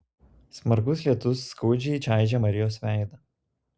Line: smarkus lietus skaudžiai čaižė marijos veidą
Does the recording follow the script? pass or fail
pass